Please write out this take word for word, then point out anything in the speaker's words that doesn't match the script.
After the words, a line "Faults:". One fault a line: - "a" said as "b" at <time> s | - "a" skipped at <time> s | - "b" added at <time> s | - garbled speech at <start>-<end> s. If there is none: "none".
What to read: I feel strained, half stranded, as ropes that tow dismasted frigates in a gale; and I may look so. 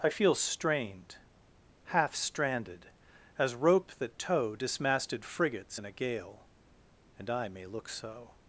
I feel strained, half stranded, as rope that tow dismasted frigates in a gale; and I may look so.
Faults:
- "ropes" said as "rope" at 3.5 s